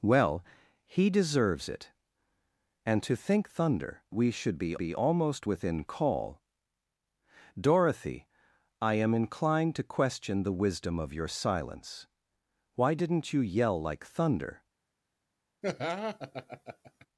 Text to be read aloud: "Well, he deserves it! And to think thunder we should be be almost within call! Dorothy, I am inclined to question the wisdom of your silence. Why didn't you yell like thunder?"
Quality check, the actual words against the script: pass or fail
pass